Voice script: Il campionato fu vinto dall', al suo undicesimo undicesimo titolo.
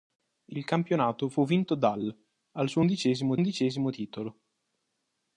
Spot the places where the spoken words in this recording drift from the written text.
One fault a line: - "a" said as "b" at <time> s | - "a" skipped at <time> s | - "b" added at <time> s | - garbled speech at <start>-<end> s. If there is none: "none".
none